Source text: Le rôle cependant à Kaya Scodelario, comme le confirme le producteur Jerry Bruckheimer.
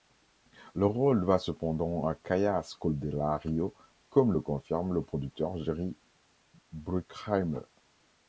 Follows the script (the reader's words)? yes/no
no